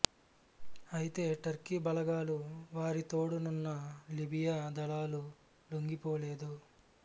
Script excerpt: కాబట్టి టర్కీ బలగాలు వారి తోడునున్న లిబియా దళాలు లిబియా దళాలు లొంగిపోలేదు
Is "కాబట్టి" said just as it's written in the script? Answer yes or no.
no